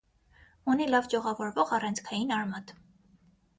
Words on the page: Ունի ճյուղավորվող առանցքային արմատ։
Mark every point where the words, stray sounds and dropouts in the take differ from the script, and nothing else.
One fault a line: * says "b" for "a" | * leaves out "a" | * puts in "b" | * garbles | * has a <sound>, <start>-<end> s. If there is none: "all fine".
* puts in "լավ"